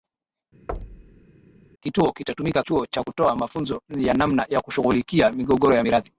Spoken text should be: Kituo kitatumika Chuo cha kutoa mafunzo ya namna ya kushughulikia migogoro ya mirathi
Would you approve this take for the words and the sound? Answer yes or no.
no